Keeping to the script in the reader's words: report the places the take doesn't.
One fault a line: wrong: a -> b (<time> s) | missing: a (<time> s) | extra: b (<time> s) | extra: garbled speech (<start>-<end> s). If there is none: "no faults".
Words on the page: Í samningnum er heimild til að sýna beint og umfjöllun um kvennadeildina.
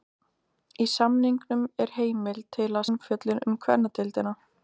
missing: sýna beint og (2.9 s)